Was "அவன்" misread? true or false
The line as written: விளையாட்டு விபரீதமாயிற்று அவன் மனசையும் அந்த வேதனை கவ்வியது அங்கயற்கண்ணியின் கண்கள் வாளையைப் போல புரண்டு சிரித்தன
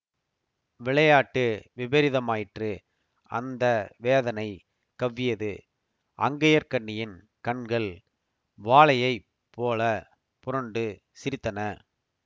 true